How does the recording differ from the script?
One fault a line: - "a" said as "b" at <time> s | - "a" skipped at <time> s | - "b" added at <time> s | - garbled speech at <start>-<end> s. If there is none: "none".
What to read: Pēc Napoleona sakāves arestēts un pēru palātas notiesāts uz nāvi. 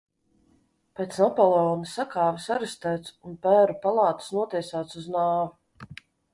none